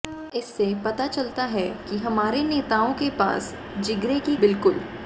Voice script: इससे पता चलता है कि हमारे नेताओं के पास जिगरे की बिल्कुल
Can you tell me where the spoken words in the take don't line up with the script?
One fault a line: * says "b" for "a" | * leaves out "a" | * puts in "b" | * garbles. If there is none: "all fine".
all fine